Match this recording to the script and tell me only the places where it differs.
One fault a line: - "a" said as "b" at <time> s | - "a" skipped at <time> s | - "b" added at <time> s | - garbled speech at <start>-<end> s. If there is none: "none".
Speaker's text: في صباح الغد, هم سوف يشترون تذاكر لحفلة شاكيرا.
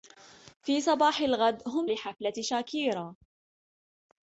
- "سوف يشترون تذاكر" skipped at 1.9 s